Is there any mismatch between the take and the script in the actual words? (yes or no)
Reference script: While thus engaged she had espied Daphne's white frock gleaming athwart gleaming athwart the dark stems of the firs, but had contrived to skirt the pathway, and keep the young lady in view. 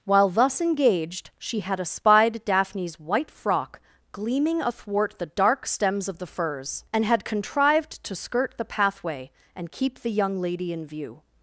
yes